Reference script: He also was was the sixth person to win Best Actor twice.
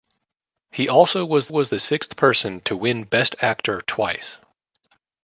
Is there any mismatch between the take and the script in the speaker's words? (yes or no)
no